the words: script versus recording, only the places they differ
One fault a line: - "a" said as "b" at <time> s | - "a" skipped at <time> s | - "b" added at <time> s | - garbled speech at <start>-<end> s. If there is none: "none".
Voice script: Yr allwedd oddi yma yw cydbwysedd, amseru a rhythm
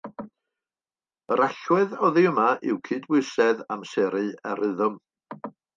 none